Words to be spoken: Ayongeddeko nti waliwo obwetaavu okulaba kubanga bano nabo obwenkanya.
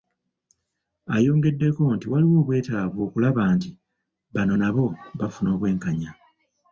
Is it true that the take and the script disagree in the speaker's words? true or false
true